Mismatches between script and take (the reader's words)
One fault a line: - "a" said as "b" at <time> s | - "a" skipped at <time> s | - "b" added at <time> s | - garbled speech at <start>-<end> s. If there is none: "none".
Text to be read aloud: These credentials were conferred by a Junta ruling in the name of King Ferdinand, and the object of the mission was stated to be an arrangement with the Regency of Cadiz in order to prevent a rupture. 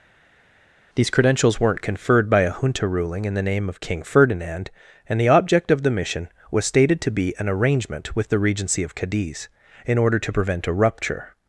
- "were" said as "weren't" at 1.6 s